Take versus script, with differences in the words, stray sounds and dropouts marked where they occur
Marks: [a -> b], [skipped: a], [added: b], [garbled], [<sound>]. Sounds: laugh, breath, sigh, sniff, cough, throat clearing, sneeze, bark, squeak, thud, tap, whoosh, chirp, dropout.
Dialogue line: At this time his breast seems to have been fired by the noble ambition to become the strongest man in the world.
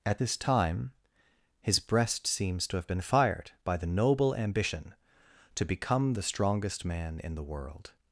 At this time his breast seems to have been fired by the noble ambition to become the strongest man in the world.